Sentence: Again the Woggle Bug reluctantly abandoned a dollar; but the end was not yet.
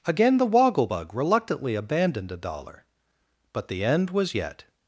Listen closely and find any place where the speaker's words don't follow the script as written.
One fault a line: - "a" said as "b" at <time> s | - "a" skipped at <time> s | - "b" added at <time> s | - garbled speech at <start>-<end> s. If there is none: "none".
- "not" skipped at 4.3 s